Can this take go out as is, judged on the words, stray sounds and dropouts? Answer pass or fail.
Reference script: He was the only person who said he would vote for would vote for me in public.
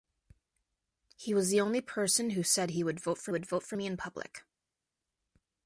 pass